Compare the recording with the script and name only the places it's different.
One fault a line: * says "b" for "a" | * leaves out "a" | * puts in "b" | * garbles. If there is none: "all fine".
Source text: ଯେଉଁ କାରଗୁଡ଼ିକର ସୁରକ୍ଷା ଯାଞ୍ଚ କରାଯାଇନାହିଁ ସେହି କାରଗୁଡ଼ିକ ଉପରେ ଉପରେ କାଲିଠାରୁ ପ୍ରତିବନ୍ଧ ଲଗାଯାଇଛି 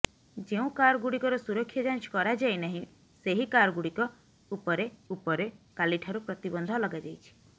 all fine